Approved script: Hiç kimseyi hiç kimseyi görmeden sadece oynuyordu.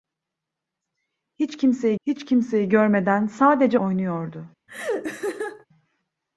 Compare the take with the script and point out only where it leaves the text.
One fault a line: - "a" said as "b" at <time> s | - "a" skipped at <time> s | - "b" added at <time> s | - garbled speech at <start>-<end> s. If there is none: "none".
none